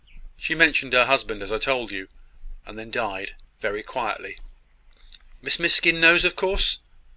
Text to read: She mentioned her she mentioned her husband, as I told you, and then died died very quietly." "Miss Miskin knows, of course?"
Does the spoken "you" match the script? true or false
true